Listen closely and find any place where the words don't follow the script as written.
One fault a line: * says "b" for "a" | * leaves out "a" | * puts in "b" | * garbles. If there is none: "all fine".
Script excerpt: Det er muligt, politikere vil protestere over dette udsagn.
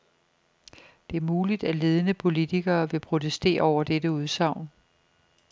* puts in "at ledende"